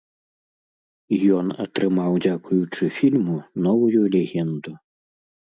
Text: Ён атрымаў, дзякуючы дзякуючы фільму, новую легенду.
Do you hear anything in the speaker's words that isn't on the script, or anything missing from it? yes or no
yes